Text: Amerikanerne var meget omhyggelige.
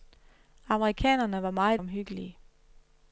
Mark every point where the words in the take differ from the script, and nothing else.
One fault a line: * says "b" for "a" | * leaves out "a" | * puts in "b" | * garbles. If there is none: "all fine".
all fine